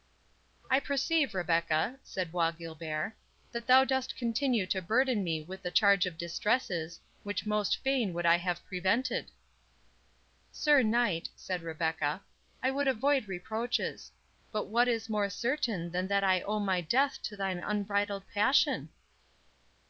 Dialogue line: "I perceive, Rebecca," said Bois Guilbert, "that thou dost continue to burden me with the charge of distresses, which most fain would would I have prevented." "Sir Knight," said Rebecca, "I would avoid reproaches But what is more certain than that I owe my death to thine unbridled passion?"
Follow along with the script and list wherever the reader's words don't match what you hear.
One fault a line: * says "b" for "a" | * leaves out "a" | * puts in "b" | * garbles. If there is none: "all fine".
* leaves out "would"